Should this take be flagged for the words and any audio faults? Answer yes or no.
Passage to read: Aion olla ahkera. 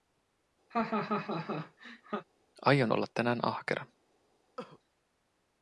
yes